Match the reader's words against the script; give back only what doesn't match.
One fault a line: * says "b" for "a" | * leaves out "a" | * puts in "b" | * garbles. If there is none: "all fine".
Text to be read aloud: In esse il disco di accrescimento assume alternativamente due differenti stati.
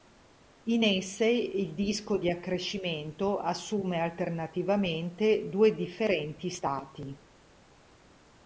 all fine